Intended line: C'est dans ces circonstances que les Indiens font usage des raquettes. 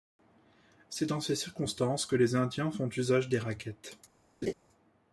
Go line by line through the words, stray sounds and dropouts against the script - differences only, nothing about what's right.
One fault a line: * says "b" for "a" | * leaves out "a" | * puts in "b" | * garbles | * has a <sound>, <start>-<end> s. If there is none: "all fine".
* has a laugh, 4.4-4.5 s